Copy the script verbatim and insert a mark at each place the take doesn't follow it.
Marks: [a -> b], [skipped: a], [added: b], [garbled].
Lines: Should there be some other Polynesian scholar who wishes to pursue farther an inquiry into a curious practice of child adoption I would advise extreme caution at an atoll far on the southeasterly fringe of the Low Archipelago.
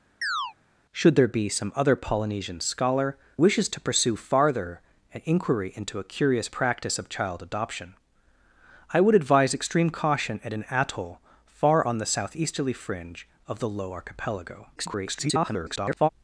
Should there be some other Polynesian scholar [skipped: who] wishes to pursue farther an inquiry into a curious practice of child adoption I would advise extreme caution at an atoll far on the southeasterly fringe of the Low Archipelago. [garbled]